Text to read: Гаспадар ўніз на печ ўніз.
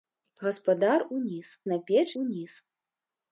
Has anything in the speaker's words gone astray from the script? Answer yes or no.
no